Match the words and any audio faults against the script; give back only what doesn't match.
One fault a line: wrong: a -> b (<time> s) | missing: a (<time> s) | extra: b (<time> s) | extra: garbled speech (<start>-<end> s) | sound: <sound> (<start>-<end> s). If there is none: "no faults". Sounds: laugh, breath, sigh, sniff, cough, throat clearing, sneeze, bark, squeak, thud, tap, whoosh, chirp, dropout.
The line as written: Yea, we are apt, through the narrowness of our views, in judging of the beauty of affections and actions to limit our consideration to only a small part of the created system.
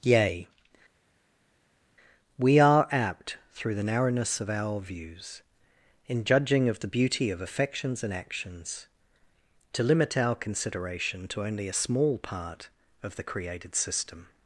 no faults